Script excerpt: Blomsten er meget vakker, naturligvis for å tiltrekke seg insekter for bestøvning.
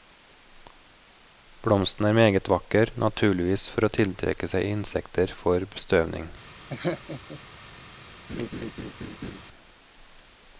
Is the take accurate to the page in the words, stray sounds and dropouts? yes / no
no